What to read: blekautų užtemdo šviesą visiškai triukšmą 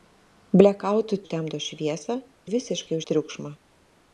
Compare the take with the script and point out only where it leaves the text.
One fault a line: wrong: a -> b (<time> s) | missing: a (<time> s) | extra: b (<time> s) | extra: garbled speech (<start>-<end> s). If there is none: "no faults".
no faults